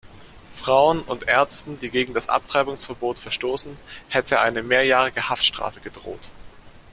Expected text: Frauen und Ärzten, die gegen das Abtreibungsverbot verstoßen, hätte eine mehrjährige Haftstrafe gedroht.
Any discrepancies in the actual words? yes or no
no